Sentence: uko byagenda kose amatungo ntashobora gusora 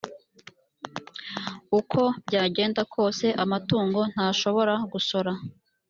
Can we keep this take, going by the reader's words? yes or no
yes